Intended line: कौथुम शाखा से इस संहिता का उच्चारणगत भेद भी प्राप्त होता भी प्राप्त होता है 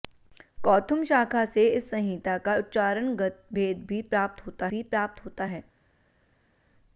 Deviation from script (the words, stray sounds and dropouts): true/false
false